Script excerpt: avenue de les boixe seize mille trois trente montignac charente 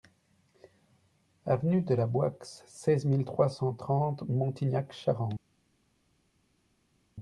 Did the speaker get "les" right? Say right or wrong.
wrong